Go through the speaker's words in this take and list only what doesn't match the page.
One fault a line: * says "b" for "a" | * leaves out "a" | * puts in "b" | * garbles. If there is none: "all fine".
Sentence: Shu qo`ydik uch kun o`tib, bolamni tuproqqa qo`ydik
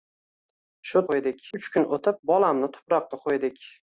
all fine